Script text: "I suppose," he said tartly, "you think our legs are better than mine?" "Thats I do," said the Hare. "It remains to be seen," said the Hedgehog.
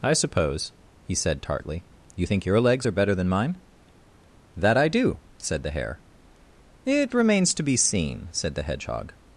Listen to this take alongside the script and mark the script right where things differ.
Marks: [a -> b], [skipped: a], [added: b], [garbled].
"I suppose," he said tartly, "you think [our -> your] legs are better than mine?" ["Thats -> That] I do," said the Hare. "It remains to be seen," said the Hedgehog.